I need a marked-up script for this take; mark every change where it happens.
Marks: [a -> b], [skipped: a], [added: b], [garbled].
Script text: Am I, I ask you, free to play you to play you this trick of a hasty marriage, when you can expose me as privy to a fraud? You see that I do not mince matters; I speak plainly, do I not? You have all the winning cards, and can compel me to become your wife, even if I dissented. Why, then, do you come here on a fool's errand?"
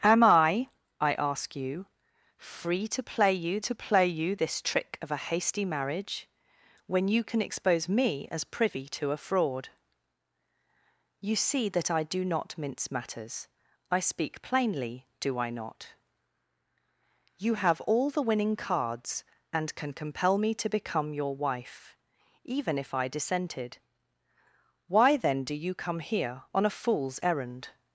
Am I, I ask you, free to play you to play you this trick of a hasty marriage, when you can expose me as privy to a fraud? You see that I do not mince matters; I speak plainly, do I not? You have all the winning cards, and can compel me to become your wife, even if I dissented. Why, then, do you come here on a fool's errand?"